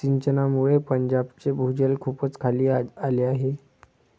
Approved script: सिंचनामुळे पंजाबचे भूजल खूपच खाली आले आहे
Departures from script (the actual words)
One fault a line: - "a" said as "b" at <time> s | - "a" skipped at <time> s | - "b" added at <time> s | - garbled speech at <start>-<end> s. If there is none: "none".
none